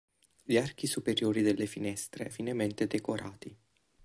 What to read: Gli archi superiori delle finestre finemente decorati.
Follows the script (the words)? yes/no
yes